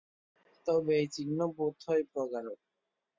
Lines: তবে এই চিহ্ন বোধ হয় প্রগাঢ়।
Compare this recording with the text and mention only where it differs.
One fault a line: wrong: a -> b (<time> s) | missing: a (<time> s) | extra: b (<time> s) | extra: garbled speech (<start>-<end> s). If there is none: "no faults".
no faults